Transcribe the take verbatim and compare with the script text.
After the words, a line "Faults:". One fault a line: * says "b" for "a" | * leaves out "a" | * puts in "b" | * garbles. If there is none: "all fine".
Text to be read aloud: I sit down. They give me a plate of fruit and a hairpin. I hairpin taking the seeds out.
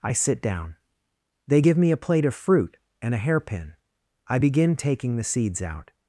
I sit down. They give me a plate of fruit and a hairpin. I begin taking the seeds out.
Faults:
* says "begin" for "hairpin"